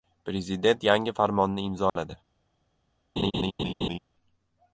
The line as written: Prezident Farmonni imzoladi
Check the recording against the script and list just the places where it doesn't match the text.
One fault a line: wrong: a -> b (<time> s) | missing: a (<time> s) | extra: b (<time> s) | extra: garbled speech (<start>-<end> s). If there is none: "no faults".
extra: yangi (0.9 s)